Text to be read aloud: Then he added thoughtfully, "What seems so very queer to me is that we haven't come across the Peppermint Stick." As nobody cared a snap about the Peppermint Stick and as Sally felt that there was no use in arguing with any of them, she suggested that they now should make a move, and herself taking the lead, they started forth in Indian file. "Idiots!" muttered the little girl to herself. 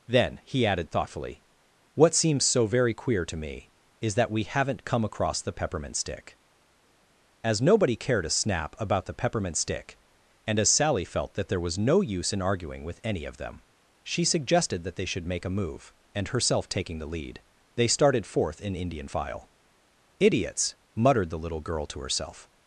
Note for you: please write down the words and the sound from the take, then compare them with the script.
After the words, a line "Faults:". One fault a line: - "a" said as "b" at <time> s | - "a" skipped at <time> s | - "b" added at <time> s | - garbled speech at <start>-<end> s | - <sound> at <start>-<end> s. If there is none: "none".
Then he added thoughtfully, "What seems so very queer to me is that we haven't come across the Peppermint Stick." As nobody cared a snap about the Peppermint Stick and as Sally felt that there was no use in arguing with any of them, she suggested that they should make a move, and herself taking the lead, they started forth in Indian file. "Idiots!" muttered the little girl to herself.
Faults:
- "now" skipped at 15.1 s